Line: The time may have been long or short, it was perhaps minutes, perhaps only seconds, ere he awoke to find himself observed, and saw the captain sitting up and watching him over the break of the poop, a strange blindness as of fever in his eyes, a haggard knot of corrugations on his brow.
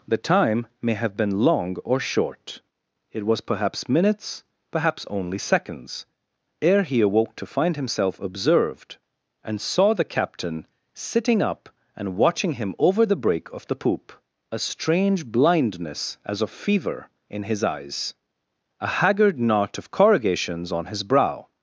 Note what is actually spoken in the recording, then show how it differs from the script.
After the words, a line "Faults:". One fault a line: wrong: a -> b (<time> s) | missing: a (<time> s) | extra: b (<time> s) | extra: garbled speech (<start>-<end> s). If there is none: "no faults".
The time may have been long or short, it was perhaps minutes, perhaps only seconds, ere he awoke to find himself observed, and saw the captain sitting up and watching him over the break of the poop, a strange blindness as of fever in his eyes, a haggard knot of corrugations on his brow.
Faults:
no faults